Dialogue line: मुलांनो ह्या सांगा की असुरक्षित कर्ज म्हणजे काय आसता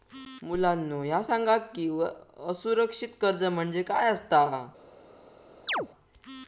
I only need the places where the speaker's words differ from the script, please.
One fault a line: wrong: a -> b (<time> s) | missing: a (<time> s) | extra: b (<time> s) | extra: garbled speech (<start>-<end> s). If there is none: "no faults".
no faults